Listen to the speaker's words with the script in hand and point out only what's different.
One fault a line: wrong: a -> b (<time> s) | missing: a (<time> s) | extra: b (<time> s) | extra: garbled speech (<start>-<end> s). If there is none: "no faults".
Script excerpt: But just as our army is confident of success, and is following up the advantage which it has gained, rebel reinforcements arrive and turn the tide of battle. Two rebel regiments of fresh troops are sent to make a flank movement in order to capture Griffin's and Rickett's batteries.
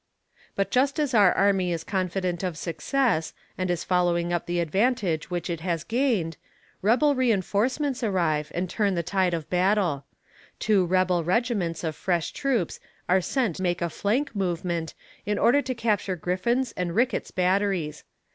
missing: to (13.6 s)